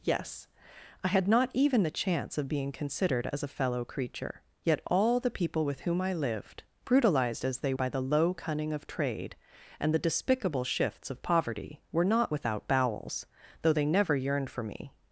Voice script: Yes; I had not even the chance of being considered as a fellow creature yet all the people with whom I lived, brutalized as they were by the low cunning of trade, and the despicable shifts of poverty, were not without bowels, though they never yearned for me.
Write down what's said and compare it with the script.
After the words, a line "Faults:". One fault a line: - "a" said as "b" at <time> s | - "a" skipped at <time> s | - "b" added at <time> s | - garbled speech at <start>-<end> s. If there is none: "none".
Yes; I had not even the chance of being considered as a fellow creature yet all the people with whom I lived, brutalized as they by the low cunning of trade, and the despicable shifts of poverty, were not without bowels, though they never yearned for me.
Faults:
- "were" skipped at 7.7 s